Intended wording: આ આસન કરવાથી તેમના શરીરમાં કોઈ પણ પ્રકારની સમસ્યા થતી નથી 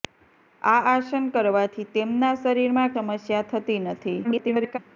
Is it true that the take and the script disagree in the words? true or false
true